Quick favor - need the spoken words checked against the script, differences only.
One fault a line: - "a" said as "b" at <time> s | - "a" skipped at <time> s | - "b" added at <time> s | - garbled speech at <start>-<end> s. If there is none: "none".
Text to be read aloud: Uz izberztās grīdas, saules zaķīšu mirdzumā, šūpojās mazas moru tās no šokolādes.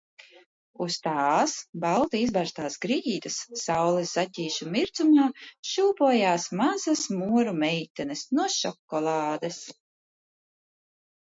- "tās balti" added at 1.1 s
- "tās" said as "meitenes" at 7.7 s